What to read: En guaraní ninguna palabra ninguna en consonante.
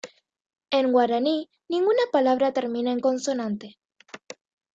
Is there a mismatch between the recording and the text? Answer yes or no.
yes